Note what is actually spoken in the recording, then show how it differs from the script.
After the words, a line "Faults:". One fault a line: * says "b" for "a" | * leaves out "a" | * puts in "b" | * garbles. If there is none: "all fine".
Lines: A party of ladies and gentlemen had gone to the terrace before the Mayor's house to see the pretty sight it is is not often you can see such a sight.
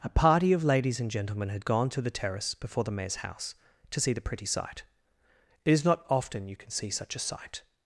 A party of ladies and gentlemen had gone to the terrace before the Mayor's house to see the pretty sight it is not often you can see such a sight.
Faults:
* leaves out "is"